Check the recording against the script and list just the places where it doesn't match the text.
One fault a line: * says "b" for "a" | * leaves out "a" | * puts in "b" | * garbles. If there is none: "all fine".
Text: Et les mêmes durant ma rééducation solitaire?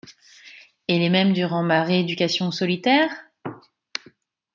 all fine